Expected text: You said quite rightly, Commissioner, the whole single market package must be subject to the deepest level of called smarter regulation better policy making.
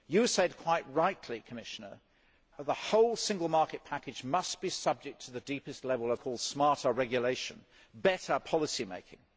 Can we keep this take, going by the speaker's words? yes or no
yes